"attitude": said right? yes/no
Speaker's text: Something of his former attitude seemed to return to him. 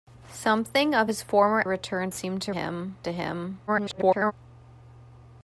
no